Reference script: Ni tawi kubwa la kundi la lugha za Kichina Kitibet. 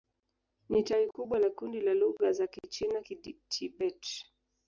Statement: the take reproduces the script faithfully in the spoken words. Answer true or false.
true